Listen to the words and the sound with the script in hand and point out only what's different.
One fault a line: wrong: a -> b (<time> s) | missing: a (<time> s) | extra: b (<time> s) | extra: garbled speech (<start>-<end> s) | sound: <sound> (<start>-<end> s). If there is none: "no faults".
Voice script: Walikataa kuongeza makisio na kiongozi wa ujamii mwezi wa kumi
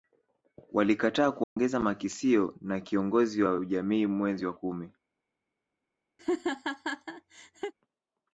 sound: dropout (1.4-1.6 s)
sound: laugh (6.2-7.7 s)